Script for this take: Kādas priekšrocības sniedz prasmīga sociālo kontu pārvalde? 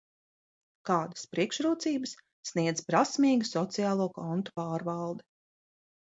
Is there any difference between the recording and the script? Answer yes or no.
no